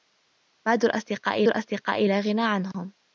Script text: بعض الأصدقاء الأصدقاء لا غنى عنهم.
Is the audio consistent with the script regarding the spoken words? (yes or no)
yes